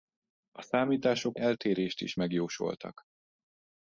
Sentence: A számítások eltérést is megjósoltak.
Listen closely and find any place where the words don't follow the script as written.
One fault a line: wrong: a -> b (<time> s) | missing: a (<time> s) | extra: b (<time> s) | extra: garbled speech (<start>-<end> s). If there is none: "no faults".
no faults